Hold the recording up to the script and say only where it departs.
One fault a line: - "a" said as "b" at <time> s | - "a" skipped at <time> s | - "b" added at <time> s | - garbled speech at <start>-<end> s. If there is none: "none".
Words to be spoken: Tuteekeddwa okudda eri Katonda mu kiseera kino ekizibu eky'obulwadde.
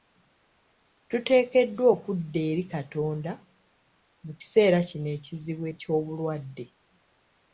none